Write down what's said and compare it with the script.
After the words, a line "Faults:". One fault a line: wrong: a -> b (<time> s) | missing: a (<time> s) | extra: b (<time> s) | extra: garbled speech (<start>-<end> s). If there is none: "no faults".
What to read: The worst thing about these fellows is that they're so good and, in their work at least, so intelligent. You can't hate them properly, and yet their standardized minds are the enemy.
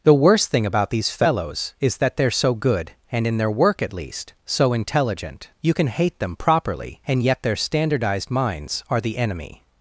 The worst thing about these fellows is that they're so good and, in their work at least, so intelligent. You can hate them properly, and yet their standardized minds are the enemy.
Faults:
wrong: can't -> can (5.7 s)